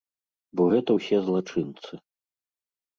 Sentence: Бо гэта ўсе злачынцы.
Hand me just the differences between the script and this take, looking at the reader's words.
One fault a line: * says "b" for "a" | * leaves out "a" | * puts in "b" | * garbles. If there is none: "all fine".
all fine